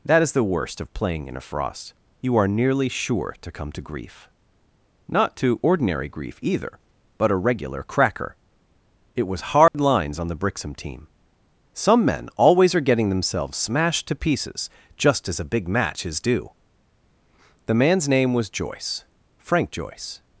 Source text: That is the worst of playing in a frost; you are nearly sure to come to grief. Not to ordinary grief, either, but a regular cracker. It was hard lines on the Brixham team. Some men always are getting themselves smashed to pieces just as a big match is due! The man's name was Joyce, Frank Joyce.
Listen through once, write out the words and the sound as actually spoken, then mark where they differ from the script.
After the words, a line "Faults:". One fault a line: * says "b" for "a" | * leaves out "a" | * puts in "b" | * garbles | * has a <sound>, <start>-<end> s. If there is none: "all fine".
That is the worst of playing in a frost; you are nearly sure to come to grief. Not to ordinary grief, either, but a regular cracker. It was hard lines on the Brixham team. Some men always are getting themselves smashed to pieces just as a big match is due! The man's name was Joyce, Frank Joyce.
Faults:
* has a dropout, 9.7-9.7 s